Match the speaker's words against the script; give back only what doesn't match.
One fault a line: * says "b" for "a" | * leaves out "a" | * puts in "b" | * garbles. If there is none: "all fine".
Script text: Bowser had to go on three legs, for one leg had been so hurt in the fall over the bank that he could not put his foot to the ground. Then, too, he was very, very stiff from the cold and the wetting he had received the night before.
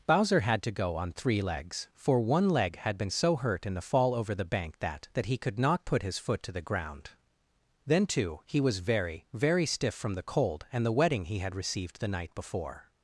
* puts in "that"